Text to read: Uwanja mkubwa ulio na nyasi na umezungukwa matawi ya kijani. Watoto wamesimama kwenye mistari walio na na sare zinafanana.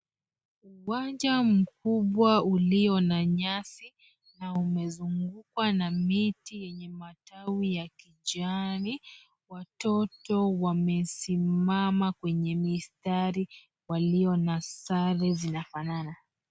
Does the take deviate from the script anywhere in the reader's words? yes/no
yes